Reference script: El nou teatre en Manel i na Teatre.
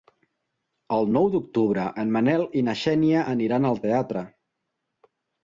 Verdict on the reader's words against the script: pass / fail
fail